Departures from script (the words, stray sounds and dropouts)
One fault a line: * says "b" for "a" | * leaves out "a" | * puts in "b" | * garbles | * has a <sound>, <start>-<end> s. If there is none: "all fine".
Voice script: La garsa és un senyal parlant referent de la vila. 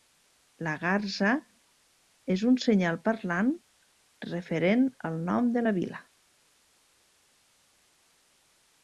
* puts in "al nom"